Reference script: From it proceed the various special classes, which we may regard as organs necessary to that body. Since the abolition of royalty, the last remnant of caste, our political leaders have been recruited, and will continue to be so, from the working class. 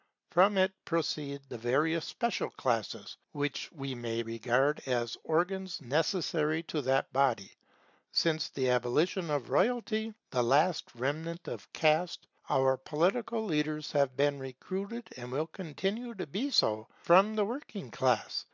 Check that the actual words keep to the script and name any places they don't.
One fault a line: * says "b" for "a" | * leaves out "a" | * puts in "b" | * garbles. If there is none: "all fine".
all fine